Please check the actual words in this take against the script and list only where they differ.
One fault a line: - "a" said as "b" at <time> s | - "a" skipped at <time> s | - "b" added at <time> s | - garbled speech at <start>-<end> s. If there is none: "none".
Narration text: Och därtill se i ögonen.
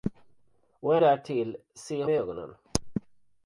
none